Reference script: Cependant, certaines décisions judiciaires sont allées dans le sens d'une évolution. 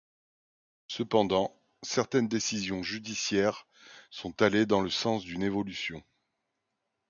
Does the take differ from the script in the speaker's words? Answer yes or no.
no